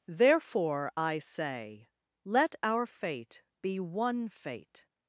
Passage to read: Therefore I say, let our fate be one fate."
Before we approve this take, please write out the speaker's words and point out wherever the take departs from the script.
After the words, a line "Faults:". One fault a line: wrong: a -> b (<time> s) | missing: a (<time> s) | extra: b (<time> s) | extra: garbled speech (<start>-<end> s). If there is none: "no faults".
Therefore I say, let our fate be one fate."
Faults:
no faults